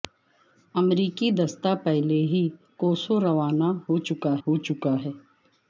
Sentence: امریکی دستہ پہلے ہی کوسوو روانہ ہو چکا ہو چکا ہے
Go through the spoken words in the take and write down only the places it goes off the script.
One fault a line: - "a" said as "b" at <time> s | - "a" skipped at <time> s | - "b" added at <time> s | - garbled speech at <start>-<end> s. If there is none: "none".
none